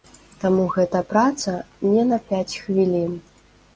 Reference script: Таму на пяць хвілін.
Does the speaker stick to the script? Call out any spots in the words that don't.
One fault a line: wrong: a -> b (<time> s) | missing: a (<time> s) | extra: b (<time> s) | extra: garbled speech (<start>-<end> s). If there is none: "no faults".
extra: гэта праца не (0.8 s)